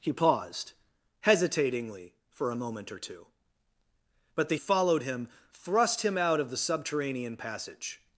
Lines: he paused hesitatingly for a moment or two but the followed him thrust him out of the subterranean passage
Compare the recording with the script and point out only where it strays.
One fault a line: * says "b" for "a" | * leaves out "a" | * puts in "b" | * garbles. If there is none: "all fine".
all fine